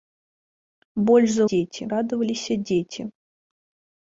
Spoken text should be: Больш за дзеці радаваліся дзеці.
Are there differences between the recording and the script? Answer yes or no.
no